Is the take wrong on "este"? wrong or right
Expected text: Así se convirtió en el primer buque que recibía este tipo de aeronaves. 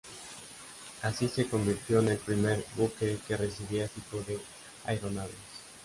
wrong